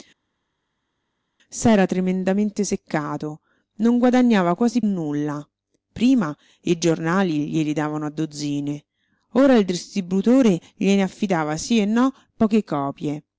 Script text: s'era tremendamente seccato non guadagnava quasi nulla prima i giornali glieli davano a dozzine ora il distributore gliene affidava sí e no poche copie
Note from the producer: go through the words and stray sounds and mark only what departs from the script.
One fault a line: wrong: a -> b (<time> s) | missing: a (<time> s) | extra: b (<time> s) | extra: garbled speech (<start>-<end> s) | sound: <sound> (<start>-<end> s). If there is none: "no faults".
no faults